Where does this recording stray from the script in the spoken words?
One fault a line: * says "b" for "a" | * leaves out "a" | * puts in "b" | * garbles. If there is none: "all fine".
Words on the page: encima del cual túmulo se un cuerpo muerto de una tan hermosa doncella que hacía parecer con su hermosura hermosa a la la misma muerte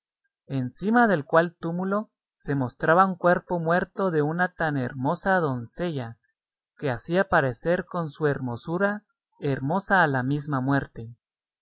* puts in "mostraba"
* leaves out "la"